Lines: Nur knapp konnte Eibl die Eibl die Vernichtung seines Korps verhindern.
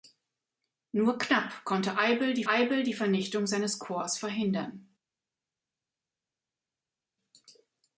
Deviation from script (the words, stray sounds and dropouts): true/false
false